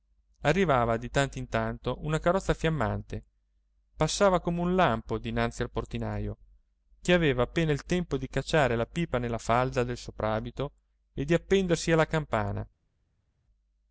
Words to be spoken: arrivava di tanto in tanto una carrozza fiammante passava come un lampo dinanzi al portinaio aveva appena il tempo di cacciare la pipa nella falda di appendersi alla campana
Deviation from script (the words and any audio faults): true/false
true